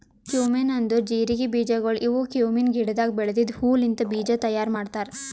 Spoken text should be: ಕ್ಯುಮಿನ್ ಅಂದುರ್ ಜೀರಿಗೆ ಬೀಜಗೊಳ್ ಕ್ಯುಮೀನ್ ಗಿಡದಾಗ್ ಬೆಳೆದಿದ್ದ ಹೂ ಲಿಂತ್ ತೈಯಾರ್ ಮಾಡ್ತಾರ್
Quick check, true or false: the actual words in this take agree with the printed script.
false